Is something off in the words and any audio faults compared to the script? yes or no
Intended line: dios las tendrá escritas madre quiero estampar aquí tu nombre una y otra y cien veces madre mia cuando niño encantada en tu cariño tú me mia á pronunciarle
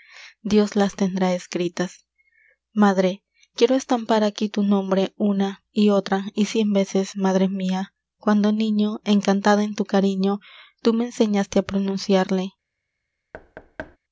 yes